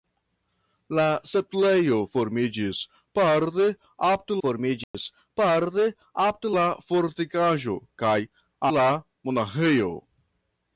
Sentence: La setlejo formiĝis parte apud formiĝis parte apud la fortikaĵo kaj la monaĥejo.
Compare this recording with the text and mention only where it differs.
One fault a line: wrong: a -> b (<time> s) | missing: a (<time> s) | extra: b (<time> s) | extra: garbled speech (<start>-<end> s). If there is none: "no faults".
no faults